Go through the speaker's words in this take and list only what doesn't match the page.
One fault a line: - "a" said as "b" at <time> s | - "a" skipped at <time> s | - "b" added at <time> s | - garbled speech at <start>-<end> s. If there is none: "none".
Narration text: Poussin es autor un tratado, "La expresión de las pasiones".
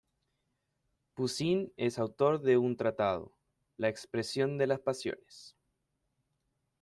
- "de" added at 2.4 s